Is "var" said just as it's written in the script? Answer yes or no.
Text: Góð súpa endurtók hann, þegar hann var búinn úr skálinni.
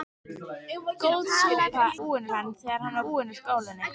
no